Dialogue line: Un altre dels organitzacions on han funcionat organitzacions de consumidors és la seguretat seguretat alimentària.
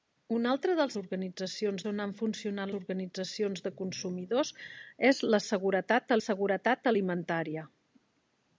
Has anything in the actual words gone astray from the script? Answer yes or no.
no